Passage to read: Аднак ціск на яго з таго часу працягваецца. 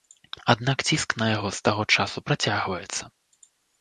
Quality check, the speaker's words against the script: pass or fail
pass